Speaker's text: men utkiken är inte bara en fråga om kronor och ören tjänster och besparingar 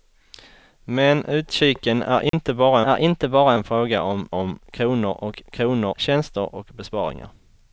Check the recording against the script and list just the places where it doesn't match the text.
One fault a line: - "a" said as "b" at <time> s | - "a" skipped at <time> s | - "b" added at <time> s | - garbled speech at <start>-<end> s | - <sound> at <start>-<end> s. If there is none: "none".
- dropout at 2.3-2.3 s
- "är inte bara" added at 2.8 s
- "om" added at 4.3 s
- "ören" said as "kronor" at 5.5 s